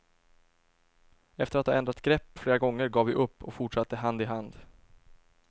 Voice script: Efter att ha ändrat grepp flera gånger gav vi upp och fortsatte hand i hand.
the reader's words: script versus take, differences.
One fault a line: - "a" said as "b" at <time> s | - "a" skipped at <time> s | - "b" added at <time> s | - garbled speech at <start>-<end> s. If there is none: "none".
none